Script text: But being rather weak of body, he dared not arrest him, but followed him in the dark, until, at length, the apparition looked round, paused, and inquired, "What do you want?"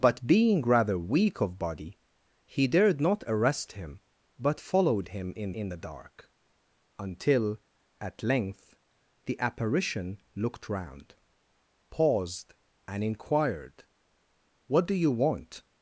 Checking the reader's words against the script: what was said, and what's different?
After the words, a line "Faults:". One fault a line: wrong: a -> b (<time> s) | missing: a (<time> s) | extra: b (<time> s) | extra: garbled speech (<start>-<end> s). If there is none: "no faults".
But being rather weak of body, he dared not arrest him, but followed him in in the dark, until, at length, the apparition looked round, paused, and inquired, "What do you want?"
Faults:
extra: in (5.5 s)